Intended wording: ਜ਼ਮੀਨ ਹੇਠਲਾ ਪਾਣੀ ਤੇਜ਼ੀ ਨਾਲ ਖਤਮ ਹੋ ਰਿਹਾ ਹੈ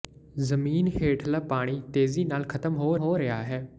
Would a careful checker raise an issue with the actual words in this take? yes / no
yes